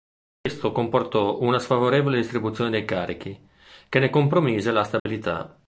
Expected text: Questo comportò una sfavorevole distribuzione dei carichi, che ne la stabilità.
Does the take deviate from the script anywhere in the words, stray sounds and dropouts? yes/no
yes